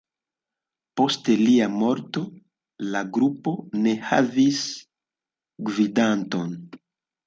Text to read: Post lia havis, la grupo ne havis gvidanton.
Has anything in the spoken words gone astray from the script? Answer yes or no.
yes